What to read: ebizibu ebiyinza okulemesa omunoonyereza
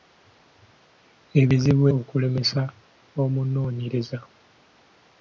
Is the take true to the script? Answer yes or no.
no